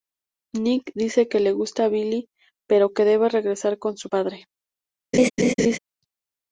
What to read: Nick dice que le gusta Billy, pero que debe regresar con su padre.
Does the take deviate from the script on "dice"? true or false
false